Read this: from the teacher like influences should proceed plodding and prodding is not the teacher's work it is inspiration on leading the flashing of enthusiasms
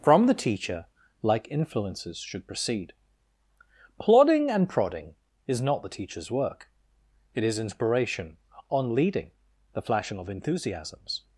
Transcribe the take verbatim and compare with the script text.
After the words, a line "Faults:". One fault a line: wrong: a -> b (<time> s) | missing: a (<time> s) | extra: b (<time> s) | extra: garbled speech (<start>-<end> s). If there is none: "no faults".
from the teacher like influences should proceed plodding and prodding is not the teacher's work it is inspiration on leading the flashing of enthusiasms
Faults:
no faults